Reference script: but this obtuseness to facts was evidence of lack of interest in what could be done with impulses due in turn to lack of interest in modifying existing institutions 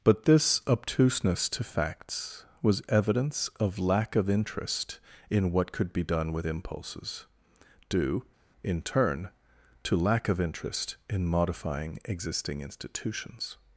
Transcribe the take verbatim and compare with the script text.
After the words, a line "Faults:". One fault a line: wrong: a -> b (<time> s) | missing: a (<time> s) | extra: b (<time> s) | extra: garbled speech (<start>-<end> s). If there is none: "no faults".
but this obtuseness to facts was evidence of lack of interest in what could be done with impulses due in turn to lack of interest in modifying existing institutions
Faults:
no faults